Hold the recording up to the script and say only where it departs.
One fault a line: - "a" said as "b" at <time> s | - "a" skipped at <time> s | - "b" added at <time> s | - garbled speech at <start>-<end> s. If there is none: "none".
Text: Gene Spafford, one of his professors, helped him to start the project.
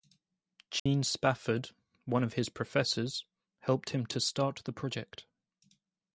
none